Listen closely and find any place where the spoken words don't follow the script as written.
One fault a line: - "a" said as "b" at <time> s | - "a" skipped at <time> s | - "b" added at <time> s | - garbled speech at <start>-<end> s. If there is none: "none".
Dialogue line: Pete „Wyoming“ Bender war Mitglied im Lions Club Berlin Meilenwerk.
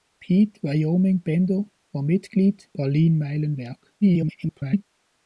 - "im Lions Club" skipped at 2.7 s
- garbled speech at 4.0-4.8 s